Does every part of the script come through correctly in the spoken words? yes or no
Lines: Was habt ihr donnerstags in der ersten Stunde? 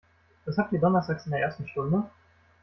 yes